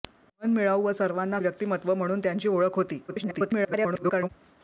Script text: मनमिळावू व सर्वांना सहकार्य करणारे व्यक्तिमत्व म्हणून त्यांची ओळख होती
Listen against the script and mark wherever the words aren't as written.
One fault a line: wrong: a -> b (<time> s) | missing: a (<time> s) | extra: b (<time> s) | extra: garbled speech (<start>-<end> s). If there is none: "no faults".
missing: सहकार्य करणारे (1.4 s)
extra: garbled speech (3.1-4.3 s)